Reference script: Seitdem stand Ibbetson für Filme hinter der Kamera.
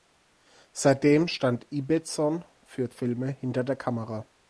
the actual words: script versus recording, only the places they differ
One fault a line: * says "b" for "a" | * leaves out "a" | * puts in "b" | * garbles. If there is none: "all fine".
all fine